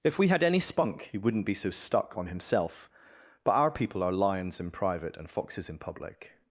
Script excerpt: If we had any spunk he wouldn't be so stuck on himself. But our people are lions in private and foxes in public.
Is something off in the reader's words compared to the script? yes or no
no